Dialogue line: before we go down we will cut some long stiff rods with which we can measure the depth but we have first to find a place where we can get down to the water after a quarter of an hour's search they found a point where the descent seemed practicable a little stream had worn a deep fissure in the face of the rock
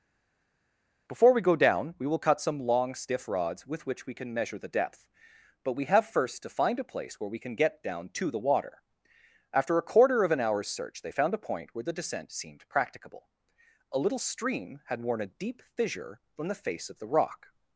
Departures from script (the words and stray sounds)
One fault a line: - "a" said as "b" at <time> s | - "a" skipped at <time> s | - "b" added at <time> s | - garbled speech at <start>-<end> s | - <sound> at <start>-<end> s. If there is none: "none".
- "in" said as "from" at 16.3 s